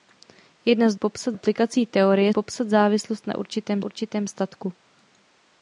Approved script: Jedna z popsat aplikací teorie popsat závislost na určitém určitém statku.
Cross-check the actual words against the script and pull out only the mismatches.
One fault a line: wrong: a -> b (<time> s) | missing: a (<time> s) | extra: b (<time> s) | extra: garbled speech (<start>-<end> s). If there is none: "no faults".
no faults